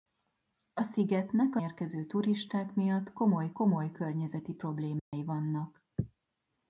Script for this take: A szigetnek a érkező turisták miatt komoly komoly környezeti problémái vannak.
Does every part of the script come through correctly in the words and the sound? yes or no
no